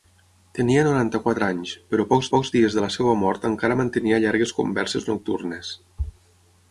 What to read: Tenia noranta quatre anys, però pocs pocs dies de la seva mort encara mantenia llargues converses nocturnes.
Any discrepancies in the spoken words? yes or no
no